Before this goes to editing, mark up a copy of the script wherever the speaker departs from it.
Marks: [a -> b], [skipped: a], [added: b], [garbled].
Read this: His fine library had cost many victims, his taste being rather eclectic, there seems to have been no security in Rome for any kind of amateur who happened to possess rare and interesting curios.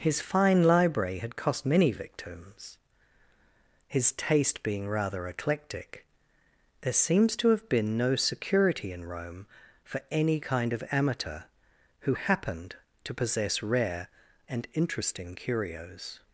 His fine library had cost many victims, his taste being rather eclectic, there seems to have been no security in Rome for any kind of amateur who happened to possess rare and interesting curios.